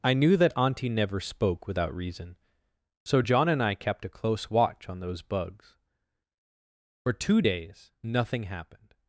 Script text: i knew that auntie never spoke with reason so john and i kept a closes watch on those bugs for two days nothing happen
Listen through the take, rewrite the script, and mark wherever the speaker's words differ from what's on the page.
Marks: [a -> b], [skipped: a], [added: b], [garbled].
i knew that auntie never spoke [with -> without] reason so john and i kept a [closes -> close] watch on those bugs for two days nothing [happen -> happened]